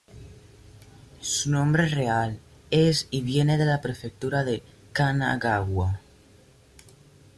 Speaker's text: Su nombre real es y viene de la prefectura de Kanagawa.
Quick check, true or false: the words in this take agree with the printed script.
true